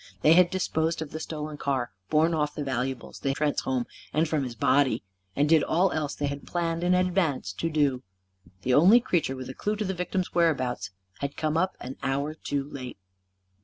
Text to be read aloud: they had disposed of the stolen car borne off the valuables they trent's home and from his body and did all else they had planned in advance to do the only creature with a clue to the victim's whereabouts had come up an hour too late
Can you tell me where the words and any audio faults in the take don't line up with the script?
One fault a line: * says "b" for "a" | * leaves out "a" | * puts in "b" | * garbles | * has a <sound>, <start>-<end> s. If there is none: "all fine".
all fine